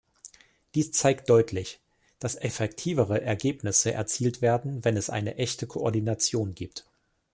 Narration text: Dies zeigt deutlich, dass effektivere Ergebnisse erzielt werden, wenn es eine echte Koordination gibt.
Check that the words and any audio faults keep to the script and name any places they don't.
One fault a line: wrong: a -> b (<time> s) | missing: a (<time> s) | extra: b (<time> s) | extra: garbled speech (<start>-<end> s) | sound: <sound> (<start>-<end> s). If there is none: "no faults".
no faults